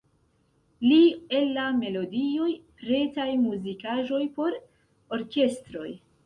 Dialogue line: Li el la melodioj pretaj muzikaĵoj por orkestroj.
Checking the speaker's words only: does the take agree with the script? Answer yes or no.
yes